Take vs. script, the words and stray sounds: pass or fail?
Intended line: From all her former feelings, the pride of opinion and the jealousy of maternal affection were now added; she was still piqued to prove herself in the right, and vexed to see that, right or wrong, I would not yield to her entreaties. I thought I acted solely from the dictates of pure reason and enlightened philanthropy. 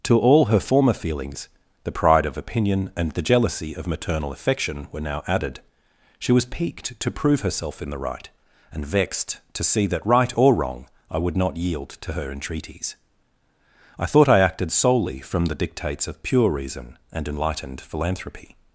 fail